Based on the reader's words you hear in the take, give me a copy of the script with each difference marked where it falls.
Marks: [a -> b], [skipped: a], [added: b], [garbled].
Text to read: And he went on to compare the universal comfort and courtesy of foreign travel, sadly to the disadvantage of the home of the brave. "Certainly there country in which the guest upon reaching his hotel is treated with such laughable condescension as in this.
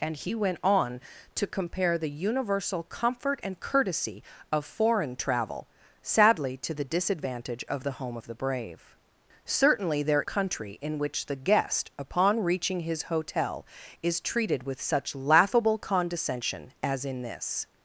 And he went on to compare the universal comfort and courtesy of foreign travel, sadly to the disadvantage of the home of the brave. "Certainly there country in which the guest upon reaching his hotel is treated with such laughable condescension as in this.